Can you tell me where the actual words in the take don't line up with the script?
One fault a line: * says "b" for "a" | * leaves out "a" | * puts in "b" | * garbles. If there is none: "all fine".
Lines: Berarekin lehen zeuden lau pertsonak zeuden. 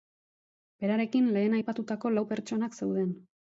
* says "aipatutako" for "zeuden"